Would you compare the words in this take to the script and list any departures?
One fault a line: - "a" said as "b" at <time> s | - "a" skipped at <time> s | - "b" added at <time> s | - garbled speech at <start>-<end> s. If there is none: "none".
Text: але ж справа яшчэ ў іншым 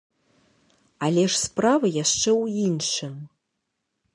none